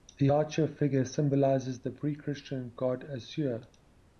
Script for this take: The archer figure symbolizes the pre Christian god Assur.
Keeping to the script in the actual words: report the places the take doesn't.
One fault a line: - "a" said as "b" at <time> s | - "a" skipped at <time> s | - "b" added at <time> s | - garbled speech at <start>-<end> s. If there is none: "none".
none